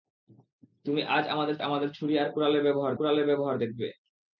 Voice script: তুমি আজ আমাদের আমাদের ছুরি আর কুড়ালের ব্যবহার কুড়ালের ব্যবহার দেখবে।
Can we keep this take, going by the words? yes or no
yes